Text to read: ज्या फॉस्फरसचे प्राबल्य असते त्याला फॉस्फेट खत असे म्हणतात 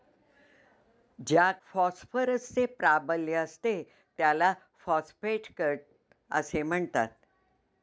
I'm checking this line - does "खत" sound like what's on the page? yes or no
yes